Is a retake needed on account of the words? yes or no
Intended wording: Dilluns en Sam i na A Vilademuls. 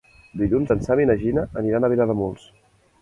yes